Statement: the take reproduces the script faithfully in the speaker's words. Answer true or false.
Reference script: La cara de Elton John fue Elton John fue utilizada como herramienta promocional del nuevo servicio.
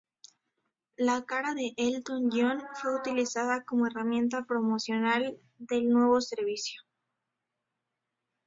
false